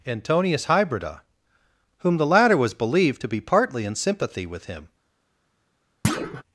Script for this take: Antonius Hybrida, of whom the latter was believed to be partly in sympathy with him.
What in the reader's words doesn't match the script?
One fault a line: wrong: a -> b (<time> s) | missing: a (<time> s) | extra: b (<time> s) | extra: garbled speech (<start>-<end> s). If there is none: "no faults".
missing: of (1.2 s)